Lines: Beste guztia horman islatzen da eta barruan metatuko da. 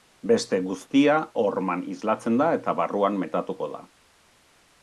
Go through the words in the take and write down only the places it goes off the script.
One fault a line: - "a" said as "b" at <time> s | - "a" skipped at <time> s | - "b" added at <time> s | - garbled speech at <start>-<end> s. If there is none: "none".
none